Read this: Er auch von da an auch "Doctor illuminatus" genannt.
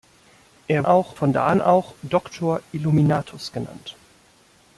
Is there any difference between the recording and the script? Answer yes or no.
no